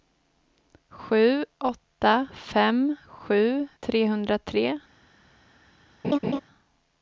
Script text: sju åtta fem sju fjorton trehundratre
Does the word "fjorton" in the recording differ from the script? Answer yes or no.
yes